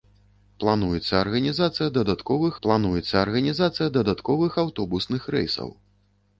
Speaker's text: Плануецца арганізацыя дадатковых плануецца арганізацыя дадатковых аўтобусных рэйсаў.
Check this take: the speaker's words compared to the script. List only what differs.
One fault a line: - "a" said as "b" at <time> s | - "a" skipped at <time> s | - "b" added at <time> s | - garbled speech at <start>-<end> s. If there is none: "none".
none